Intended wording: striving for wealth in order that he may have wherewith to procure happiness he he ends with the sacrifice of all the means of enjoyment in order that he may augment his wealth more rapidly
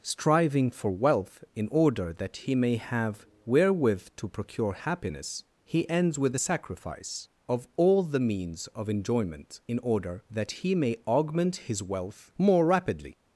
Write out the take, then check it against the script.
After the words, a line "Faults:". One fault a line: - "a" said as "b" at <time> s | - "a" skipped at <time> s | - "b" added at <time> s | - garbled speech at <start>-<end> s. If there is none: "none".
striving for wealth in order that he may have wherewith to procure happiness he ends with the sacrifice of all the means of enjoyment in order that he may augment his wealth more rapidly
Faults:
- "he" skipped at 5.9 s